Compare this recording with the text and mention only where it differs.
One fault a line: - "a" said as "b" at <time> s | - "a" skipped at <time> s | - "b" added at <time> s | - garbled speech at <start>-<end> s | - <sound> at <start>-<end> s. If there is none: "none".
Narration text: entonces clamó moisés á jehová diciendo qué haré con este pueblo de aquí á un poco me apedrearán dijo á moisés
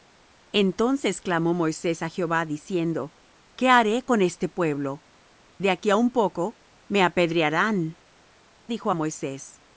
none